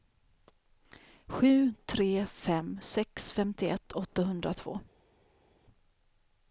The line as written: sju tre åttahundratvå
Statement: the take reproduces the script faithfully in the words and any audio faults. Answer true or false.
false